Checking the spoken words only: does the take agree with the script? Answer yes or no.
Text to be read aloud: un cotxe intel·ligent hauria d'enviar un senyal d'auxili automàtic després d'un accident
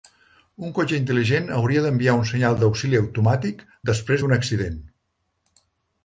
yes